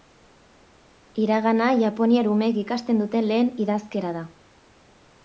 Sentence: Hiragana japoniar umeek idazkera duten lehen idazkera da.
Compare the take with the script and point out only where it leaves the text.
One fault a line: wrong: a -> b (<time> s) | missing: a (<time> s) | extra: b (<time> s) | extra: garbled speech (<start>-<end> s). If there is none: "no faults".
wrong: idazkera -> ikasten (2.6 s)